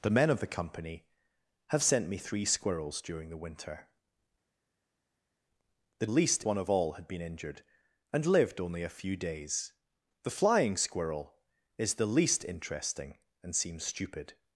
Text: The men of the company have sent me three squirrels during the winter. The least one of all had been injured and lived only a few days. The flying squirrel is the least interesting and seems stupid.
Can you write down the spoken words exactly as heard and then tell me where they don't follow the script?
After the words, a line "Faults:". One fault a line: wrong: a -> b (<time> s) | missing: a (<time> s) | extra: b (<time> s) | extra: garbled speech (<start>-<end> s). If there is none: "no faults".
The men of the company have sent me three squirrels during the winter. The least one of all had been injured and lived only a few days. The flying squirrel is the least interesting and seems stupid.
Faults:
no faults